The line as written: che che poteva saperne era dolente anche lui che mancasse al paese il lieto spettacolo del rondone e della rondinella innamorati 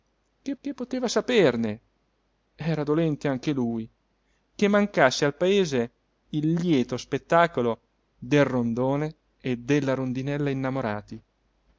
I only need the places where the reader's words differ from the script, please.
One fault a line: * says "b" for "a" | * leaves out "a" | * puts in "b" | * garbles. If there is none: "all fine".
all fine